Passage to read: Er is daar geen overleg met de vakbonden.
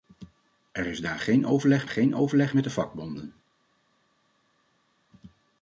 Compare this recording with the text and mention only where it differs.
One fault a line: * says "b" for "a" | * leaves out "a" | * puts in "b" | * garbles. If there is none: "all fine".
* puts in "geen overleg"